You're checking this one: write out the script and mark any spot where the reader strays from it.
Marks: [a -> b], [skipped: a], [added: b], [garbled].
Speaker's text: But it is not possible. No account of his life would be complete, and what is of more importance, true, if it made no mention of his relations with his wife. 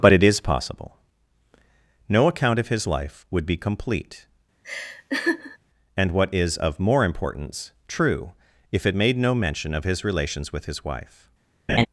But it is [skipped: not] possible. No account of his life would be complete, and what is of more importance, true, if it made no mention of his relations with his wife.